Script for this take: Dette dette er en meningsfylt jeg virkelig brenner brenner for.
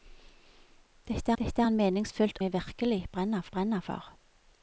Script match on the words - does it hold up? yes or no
yes